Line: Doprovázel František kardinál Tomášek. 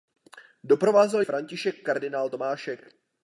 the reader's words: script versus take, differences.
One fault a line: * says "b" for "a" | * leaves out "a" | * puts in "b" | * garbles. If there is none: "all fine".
all fine